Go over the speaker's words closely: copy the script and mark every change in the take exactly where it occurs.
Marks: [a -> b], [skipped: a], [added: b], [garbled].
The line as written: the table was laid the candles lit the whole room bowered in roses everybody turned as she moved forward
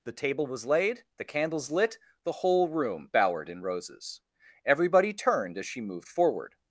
the table was laid the candles lit the whole room bowered in roses everybody turned as she moved forward